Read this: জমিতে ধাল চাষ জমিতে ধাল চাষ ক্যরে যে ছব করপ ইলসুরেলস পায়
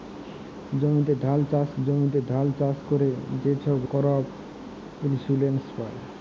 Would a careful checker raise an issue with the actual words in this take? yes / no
no